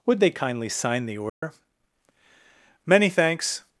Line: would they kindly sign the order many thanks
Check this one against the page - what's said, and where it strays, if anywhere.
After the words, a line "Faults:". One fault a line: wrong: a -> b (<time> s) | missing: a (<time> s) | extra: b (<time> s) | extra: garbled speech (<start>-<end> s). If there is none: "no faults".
would they kindly sign the order many thanks
Faults:
no faults